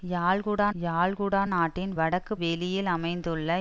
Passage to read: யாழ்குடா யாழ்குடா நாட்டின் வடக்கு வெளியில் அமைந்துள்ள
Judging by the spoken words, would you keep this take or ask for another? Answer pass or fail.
pass